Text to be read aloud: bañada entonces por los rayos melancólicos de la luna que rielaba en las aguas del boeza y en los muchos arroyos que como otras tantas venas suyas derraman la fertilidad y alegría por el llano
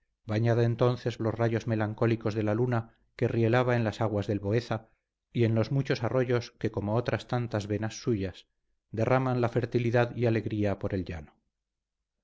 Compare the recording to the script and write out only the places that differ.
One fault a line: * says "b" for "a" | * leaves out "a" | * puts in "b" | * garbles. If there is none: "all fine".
* leaves out "por"